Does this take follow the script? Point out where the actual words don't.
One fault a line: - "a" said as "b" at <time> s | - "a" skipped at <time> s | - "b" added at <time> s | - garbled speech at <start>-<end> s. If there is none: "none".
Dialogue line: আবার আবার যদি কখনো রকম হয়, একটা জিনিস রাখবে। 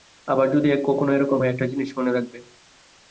- "আবার" skipped at 0.5 s
- "এ" added at 1.1 s
- "মনে" added at 2.0 s